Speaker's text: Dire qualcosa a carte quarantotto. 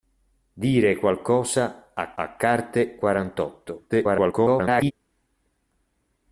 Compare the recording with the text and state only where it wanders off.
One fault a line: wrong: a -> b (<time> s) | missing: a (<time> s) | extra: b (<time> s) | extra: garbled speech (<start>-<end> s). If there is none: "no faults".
extra: a (2.1 s)
extra: garbled speech (3.9-4.9 s)